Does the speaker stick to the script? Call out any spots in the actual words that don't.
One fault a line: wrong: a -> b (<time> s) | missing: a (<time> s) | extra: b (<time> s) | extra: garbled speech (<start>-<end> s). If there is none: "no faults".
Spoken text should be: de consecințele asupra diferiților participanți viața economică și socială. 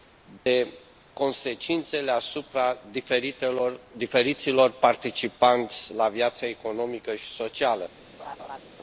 extra: la (5.9 s)